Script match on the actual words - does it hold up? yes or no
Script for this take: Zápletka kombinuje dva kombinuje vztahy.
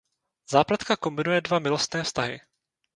no